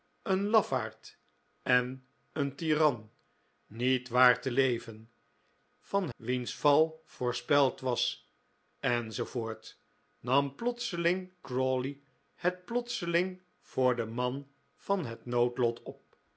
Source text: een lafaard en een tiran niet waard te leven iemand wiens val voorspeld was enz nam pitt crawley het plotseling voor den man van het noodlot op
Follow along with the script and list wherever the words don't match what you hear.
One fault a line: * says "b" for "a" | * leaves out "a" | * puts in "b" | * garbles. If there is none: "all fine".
* says "van" for "iemand"
* says "plotseling" for "pitt"